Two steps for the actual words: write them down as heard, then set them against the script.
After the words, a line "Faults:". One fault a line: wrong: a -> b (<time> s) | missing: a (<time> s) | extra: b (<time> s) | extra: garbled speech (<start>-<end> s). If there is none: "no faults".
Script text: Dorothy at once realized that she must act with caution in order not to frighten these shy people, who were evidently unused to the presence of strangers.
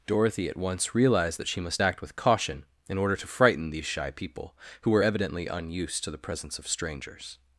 Dorothy at once realized that she must act with caution in order to frighten these shy people, who were evidently unused to the presence of strangers.
Faults:
missing: not (3.1 s)